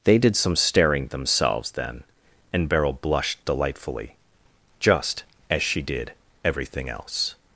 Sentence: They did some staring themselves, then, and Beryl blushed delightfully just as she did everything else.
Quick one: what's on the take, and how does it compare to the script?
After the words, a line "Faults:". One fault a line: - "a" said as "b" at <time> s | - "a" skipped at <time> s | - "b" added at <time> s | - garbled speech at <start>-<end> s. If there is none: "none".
They did some staring themselves, then, and Beryl blushed delightfully just as she did everything else.
Faults:
none